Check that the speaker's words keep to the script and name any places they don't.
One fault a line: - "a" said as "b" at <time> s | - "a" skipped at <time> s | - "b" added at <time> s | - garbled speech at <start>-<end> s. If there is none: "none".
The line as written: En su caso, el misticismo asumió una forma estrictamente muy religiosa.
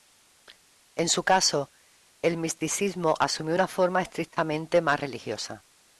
- "muy" said as "más" at 4.8 s